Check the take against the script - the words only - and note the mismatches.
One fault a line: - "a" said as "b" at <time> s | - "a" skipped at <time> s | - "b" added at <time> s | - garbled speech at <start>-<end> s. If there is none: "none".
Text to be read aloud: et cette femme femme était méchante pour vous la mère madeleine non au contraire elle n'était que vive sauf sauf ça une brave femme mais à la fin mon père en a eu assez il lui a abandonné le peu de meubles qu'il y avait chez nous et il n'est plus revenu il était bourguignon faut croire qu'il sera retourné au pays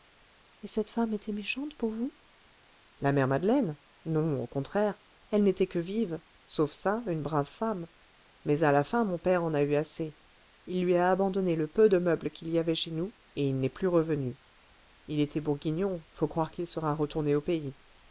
- "femme" skipped at 1.1 s
- "sauf" skipped at 6.7 s